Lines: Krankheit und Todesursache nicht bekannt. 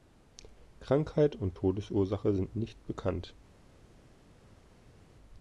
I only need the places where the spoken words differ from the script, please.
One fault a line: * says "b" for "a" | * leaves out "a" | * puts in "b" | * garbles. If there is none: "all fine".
* puts in "sind"